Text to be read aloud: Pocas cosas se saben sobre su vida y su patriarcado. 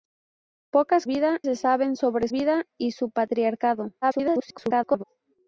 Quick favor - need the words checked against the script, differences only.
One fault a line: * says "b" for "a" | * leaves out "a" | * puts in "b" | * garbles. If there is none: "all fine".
* says "vida" for "cosas"
* leaves out "su"
* garbles